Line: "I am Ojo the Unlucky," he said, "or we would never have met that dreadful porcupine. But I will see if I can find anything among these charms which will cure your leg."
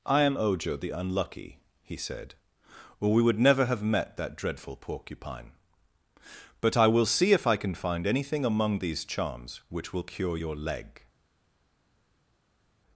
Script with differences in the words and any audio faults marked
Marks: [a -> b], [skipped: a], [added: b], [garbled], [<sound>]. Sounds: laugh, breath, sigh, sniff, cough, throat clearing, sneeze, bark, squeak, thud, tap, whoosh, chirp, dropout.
"I am Ojo the Unlucky," he said, "or we would never have met that dreadful porcupine. But I will see if I can find anything among these charms which will cure your leg."